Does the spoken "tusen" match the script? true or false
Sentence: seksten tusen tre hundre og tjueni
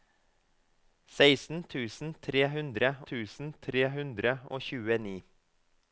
true